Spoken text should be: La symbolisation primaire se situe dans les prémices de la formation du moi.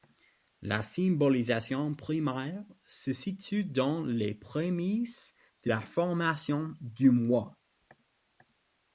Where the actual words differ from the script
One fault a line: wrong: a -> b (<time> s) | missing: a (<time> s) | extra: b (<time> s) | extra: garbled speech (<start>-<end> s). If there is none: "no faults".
no faults